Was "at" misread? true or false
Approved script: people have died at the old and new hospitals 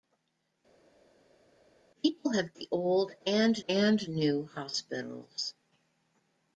true